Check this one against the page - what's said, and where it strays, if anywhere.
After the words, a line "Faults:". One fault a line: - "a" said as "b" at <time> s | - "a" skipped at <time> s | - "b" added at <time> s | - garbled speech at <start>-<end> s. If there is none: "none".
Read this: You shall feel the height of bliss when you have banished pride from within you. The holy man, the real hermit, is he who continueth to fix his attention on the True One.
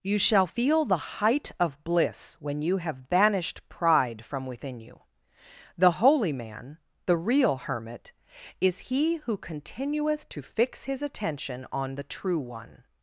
You shall feel the height of bliss when you have banished pride from within you. The holy man, the real hermit, is he who continueth to fix his attention on the True One.
Faults:
none